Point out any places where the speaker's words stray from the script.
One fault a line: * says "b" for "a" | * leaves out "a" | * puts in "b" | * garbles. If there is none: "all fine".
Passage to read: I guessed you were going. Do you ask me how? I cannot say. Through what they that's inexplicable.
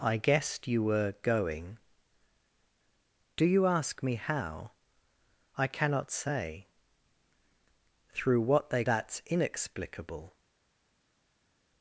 all fine